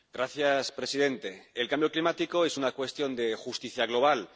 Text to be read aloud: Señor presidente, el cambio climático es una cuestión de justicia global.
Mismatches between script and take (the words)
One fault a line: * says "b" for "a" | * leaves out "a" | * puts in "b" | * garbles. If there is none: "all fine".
all fine